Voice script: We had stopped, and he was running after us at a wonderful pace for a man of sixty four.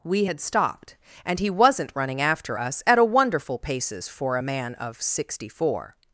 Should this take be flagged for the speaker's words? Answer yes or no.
yes